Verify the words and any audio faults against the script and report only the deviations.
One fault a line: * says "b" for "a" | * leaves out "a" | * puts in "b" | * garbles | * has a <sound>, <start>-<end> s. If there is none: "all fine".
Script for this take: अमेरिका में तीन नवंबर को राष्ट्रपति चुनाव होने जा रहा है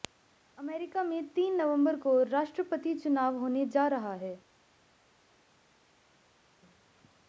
all fine